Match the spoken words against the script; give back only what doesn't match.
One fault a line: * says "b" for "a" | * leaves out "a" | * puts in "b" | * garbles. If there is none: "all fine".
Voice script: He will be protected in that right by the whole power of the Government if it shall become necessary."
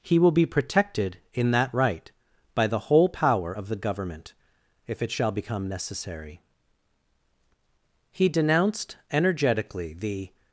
* puts in "He denounced energetically the"